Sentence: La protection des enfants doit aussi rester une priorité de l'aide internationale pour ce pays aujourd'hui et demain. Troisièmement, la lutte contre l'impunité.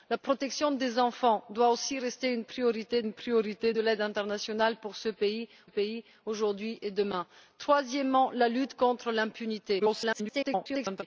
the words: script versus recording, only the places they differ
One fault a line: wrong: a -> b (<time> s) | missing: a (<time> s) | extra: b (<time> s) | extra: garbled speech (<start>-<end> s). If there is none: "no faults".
extra: une priorité (3.0 s)
extra: pays (5.7 s)
extra: garbled speech (9.8-11.0 s)